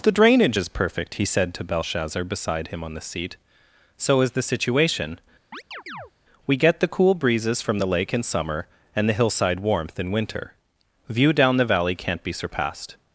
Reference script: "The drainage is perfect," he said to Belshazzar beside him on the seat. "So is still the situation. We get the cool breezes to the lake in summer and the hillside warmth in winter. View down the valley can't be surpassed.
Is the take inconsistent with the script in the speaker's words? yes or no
yes